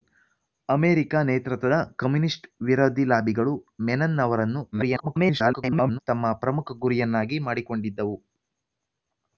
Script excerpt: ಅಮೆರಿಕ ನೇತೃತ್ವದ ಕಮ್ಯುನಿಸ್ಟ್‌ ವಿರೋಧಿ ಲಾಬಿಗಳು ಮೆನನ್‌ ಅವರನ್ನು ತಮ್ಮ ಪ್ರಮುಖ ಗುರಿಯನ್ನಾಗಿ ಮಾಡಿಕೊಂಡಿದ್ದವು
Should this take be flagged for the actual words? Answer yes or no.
yes